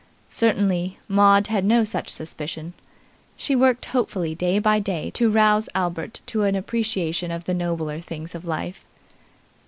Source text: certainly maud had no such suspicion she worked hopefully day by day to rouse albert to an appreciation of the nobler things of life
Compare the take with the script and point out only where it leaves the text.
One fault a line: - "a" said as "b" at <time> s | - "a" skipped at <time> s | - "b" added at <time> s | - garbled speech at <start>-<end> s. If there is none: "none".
none